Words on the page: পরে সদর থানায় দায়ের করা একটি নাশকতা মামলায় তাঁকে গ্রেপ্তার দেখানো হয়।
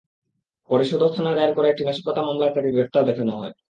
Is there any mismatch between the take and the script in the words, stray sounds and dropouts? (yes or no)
no